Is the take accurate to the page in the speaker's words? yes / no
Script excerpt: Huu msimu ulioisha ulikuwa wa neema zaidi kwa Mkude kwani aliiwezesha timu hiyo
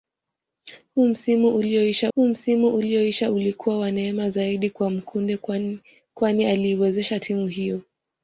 no